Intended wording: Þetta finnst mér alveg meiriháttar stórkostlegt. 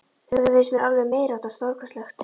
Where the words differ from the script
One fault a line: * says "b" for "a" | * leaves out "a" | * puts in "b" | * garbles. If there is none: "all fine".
all fine